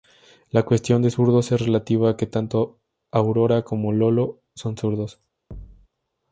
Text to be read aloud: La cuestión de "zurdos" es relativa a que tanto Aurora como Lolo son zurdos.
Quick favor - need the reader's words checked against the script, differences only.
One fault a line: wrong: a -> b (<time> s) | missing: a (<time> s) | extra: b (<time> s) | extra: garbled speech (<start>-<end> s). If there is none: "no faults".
no faults